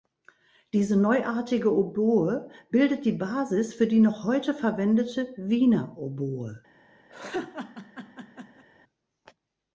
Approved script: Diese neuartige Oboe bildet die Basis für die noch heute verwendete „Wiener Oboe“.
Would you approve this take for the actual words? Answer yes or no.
yes